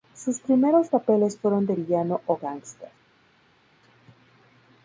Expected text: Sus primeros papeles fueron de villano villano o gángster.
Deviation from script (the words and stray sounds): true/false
true